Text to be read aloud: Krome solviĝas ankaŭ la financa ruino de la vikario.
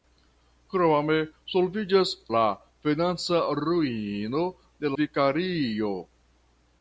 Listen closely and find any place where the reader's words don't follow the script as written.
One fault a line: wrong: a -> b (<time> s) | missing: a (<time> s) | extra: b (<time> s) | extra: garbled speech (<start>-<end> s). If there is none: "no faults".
missing: ankaŭ (2.1 s)
missing: la (5.0 s)